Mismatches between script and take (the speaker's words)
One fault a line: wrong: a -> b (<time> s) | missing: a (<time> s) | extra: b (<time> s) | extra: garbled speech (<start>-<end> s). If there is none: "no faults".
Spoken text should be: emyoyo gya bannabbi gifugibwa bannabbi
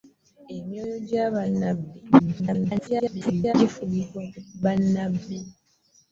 extra: garbled speech (2.2-3.5 s)